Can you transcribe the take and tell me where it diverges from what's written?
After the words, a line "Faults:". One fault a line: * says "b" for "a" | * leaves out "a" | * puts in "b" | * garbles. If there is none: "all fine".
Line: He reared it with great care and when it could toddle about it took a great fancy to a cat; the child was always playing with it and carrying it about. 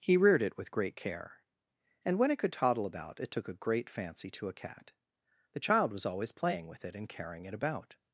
He reared it with great care and when it could toddle about it took a great fancy to a cat; the child was always playing with it and carrying it about.
Faults:
all fine